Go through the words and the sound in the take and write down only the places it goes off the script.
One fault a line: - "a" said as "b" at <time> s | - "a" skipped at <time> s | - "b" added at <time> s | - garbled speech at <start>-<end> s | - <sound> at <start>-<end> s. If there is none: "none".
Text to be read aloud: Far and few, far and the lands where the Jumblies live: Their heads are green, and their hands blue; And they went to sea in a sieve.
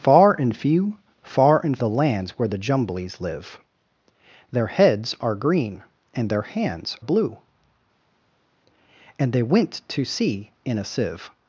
none